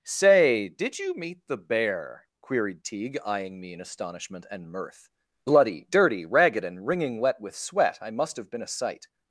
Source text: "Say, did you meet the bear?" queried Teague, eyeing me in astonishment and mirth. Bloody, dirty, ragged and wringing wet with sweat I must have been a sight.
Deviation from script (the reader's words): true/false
false